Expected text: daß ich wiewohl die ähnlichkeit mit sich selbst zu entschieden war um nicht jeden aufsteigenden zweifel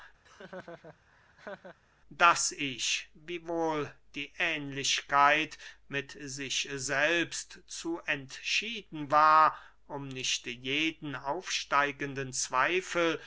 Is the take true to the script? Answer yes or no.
yes